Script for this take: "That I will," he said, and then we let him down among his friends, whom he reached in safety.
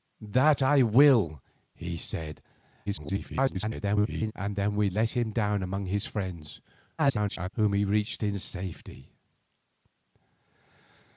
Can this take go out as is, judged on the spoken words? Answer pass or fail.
fail